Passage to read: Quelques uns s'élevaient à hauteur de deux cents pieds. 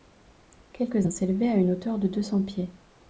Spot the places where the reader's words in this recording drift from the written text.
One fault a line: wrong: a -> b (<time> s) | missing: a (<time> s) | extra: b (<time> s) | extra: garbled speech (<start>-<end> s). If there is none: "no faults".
extra: une (1.6 s)